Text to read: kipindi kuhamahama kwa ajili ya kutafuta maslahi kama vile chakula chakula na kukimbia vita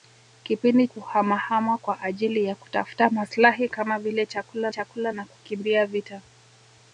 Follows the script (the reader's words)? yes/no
yes